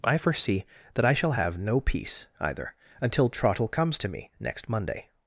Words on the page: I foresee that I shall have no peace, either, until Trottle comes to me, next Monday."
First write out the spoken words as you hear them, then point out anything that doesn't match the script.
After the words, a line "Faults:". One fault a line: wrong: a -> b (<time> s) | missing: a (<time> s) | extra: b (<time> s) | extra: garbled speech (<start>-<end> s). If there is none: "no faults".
I foresee that I shall have no peace, either, until Trottle comes to me, next Monday."
Faults:
no faults